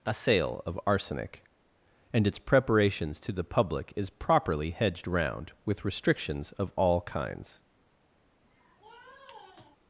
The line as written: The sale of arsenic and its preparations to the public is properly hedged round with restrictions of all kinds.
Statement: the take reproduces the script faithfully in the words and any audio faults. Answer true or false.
false